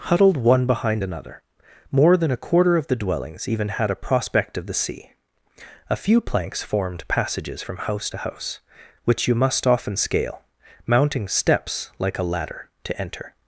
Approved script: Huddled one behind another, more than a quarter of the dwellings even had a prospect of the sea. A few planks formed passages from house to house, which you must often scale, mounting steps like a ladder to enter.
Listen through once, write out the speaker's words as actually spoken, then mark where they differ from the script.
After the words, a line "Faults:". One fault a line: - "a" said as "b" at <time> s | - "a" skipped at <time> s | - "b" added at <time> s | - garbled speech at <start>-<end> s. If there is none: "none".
Huddled one behind another, more than a quarter of the dwellings even had a prospect of the sea. A few planks formed passages from house to house, which you must often scale, mounting steps like a ladder to enter.
Faults:
none